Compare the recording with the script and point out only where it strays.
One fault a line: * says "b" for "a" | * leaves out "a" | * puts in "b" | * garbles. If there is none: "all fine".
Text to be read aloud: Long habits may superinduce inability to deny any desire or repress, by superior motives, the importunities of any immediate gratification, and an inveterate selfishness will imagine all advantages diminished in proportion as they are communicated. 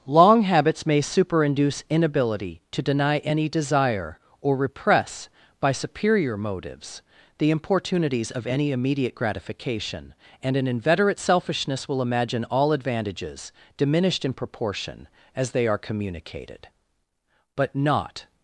* puts in "But not"